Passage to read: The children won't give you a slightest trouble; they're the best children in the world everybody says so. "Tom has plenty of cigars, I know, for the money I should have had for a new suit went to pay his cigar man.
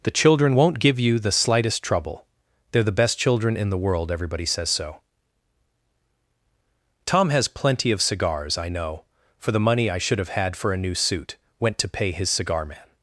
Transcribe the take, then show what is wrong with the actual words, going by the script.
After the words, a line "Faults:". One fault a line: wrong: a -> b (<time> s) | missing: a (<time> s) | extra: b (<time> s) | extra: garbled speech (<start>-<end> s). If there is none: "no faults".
The children won't give you the slightest trouble; they're the best children in the world everybody says so. "Tom has plenty of cigars, I know, for the money I should have had for a new suit went to pay his cigar man.
Faults:
wrong: a -> the (1.2 s)